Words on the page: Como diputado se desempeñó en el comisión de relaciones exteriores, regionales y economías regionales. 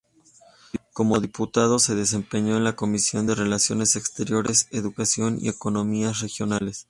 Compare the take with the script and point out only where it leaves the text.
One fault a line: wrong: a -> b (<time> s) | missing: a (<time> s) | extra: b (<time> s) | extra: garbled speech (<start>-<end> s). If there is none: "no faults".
wrong: el -> la (2.6 s)
wrong: regionales -> educación (4.7 s)